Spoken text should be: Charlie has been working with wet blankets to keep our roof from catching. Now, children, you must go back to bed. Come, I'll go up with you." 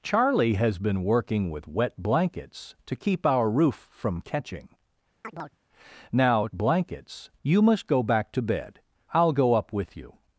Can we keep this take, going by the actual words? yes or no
no